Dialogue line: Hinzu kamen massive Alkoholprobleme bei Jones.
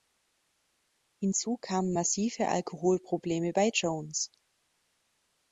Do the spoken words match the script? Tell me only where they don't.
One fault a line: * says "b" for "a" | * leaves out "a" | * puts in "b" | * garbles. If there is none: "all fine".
all fine